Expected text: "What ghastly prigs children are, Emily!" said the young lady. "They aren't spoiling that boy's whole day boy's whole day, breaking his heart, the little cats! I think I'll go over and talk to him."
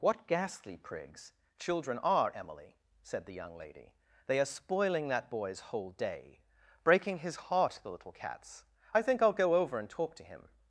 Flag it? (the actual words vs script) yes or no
yes